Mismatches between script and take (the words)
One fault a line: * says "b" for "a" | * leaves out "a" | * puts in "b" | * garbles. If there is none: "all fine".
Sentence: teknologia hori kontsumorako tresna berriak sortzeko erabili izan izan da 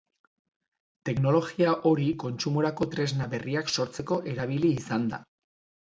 * leaves out "izan"